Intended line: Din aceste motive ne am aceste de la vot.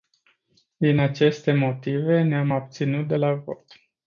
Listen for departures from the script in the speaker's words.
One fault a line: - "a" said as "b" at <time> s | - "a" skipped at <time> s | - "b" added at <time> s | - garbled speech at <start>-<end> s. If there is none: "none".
- "aceste" said as "abținut" at 2.5 s